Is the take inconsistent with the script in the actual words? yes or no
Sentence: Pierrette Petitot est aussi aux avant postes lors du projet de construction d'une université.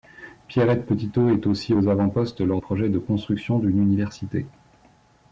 yes